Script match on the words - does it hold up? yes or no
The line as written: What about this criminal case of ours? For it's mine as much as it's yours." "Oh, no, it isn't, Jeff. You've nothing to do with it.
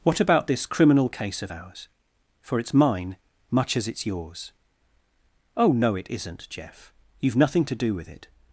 no